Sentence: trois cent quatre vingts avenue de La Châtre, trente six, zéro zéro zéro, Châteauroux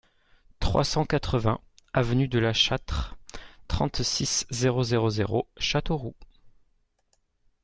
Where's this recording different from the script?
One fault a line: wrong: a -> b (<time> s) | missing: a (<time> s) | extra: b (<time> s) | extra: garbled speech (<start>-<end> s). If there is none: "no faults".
no faults